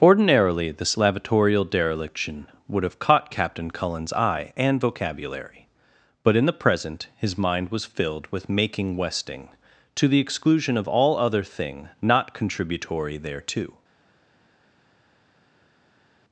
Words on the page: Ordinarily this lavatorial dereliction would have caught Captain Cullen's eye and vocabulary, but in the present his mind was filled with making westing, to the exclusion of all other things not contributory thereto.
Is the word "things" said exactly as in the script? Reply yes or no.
no